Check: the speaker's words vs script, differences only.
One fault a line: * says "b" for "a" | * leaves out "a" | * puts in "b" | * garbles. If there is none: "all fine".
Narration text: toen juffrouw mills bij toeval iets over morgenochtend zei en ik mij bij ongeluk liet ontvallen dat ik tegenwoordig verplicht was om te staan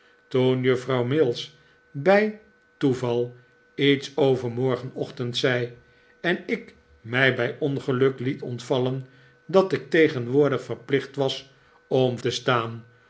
all fine